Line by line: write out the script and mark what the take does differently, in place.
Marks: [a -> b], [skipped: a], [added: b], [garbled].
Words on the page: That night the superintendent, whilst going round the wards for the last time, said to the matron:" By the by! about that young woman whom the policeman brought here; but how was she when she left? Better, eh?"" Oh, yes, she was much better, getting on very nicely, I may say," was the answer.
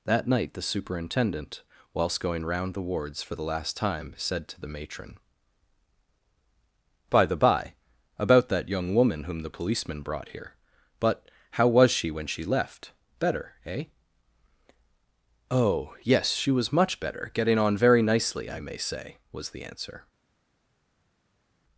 That night the superintendent, whilst going round the wards for the last time, said to the matron:" By the by! about that young woman whom the policeman brought here; but how was she when she left? Better, eh?"" Oh, yes, she was much better, getting on very nicely, I may say," was the answer.